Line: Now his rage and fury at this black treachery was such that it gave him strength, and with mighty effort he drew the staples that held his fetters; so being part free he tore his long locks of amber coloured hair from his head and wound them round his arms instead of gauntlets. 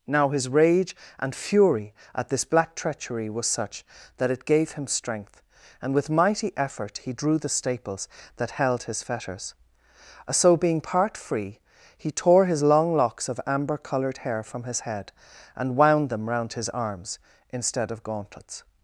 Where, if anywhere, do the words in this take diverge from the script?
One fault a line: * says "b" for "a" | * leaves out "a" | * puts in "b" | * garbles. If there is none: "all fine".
all fine